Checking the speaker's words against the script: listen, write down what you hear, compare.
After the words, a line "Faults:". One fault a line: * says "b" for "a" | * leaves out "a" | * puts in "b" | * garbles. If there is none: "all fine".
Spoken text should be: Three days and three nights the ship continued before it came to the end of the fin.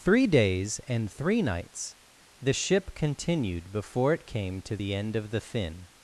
Three days and three nights the ship continued before it came to the end of the fin.
Faults:
all fine